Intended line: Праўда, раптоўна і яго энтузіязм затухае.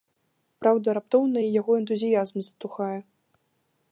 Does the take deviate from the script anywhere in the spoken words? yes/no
no